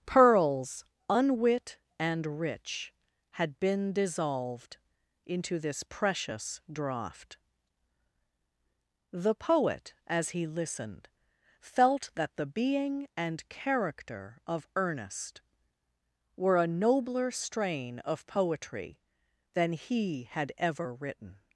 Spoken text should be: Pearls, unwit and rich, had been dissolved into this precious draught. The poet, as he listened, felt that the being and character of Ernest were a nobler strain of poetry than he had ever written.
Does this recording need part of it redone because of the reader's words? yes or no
no